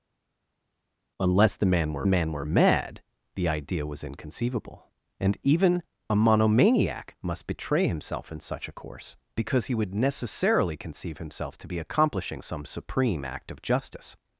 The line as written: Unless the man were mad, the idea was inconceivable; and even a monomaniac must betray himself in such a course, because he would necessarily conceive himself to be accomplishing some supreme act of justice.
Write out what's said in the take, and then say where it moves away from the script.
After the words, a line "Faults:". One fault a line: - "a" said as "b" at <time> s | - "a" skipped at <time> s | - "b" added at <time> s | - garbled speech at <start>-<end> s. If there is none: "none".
Unless the man were man were mad, the idea was inconceivable; and even a monomaniac must betray himself in such a course, because he would necessarily conceive himself to be accomplishing some supreme act of justice.
Faults:
- "man were" added at 2.1 s